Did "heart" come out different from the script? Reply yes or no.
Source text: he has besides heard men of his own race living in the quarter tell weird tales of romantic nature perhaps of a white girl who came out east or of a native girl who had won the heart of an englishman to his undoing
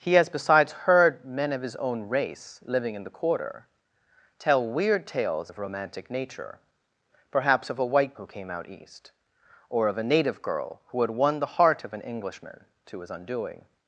no